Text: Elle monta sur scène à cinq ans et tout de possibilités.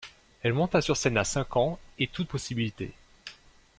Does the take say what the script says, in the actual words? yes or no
yes